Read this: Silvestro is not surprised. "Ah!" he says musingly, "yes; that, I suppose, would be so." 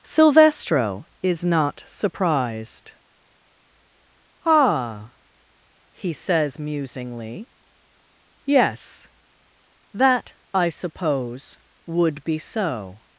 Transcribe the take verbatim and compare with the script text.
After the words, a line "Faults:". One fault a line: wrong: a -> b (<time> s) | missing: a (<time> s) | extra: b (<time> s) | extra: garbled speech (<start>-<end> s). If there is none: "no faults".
Silvestro is not surprised. "Ah!" he says musingly, "yes; that, I suppose, would be so."
Faults:
no faults